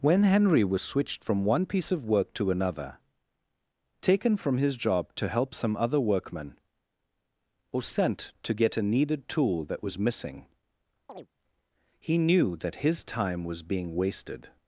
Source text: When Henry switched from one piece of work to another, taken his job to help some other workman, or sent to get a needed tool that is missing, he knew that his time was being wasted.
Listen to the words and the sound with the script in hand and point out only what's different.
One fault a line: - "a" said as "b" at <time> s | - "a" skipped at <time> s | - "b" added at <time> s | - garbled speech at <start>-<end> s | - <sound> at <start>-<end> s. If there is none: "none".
- "was" added at 0.6 s
- "from" added at 4.4 s
- "is" said as "was" at 9.8 s
- chirp at 11.1-11.3 s